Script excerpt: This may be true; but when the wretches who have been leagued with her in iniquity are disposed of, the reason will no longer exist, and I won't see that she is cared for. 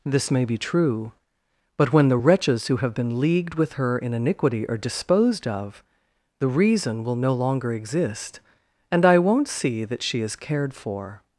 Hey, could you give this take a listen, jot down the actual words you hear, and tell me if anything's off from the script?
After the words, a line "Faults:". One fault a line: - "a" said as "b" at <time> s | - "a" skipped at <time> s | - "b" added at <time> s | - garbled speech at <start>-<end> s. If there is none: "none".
This may be true; but when the wretches who have been leagued with her in iniquity are disposed of, the reason will no longer exist, and I won't see that she is cared for.
Faults:
none